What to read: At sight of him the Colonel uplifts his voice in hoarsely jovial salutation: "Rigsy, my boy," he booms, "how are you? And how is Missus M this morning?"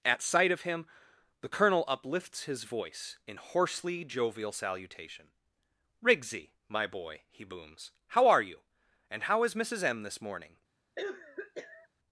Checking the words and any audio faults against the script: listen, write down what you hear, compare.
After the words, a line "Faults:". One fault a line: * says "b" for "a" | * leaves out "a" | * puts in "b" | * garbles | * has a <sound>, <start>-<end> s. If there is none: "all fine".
At sight of him the Colonel uplifts his voice in hoarsely jovial salutation: "Rigsy, my boy," he booms, "how are you? And how is Missus M this morning?"
Faults:
* has a cough, 11.0-11.9 s